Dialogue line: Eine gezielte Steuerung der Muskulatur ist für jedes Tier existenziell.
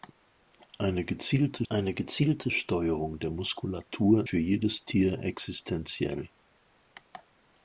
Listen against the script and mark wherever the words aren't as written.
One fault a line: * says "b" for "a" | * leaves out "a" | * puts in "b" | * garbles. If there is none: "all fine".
* puts in "eine gezielte"
* leaves out "ist"